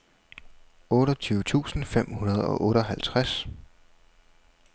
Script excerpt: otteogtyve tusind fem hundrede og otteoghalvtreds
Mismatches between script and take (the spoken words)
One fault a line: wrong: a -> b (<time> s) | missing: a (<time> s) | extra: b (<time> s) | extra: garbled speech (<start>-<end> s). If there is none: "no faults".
no faults